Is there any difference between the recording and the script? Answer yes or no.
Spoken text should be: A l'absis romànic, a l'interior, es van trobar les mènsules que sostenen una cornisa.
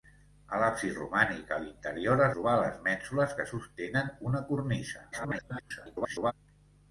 yes